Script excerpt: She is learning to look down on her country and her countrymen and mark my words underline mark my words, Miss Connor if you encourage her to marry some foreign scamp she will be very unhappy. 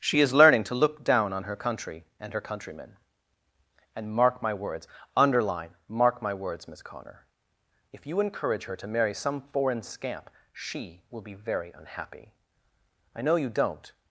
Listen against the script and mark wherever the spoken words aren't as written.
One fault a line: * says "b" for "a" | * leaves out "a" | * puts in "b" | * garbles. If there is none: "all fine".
* puts in "I know you don't"